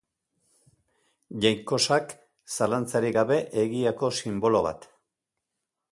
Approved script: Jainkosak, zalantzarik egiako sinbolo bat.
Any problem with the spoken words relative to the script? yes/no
yes